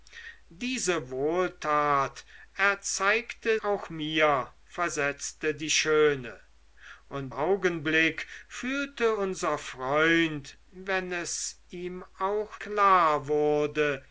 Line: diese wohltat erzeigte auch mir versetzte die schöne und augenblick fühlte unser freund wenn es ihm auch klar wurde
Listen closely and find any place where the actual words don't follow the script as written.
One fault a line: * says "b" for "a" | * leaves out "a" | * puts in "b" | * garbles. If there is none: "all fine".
all fine